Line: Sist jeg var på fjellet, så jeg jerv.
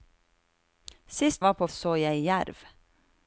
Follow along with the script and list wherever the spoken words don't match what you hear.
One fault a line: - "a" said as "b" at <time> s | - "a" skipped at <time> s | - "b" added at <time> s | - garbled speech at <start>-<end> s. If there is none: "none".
- "jeg" skipped at 1.4 s
- "fjellet" skipped at 1.7 s